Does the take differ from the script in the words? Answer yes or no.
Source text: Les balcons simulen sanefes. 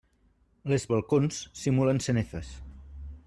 no